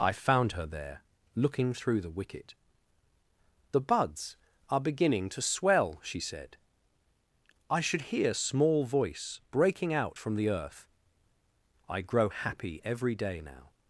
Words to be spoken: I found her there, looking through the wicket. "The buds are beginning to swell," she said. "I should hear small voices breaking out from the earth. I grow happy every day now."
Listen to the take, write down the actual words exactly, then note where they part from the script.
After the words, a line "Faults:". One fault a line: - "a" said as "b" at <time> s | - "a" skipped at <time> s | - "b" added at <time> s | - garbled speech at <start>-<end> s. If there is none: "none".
I found her there, looking through the wicket. "The buds are beginning to swell," she said. "I should hear small voice breaking out from the earth. I grow happy every day now."
Faults:
- "voices" said as "voice" at 8.8 s